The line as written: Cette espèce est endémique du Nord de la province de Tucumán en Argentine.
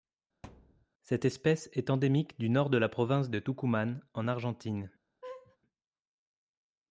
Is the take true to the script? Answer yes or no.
yes